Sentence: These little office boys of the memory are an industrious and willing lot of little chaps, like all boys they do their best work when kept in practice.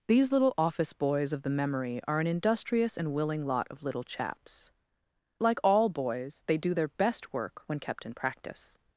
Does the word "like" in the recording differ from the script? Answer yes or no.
no